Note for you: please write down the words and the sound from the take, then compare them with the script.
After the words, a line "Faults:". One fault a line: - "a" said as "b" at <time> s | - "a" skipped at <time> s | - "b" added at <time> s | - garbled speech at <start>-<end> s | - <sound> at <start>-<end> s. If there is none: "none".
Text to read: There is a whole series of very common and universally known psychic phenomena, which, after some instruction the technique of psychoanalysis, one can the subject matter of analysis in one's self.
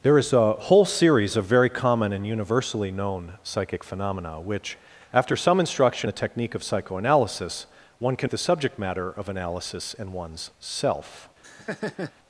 There is a whole series of very common and universally known psychic phenomena, which, after some instruction the technique of psychoanalysis, one can the subject matter of analysis in one's self.
Faults:
- laugh at 11.4-12.1 s